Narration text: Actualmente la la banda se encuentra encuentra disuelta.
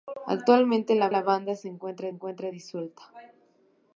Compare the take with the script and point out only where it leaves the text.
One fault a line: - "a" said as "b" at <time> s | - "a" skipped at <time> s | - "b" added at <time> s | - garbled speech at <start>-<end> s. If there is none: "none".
none